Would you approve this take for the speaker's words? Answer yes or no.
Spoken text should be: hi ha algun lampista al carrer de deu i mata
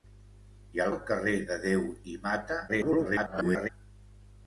no